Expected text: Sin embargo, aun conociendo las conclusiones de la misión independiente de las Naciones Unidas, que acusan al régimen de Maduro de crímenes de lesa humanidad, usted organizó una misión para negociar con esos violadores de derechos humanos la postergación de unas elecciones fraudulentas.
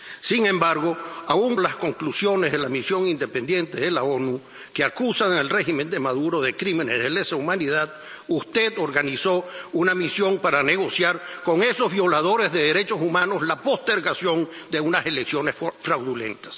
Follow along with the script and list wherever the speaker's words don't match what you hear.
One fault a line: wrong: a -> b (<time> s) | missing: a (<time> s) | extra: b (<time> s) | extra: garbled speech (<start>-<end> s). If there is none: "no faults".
missing: conociendo (1.6 s)